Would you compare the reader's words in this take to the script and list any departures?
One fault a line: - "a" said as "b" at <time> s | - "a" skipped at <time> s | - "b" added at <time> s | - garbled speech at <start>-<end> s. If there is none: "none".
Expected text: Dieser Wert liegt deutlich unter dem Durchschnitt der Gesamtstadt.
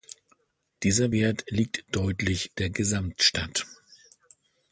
- "unter dem Durchschnitt" skipped at 2.5 s